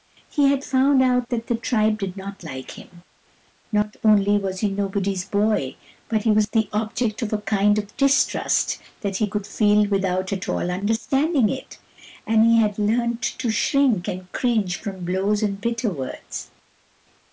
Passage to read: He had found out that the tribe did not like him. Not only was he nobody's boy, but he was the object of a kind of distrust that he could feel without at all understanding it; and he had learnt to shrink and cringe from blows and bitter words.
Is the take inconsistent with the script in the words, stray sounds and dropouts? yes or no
no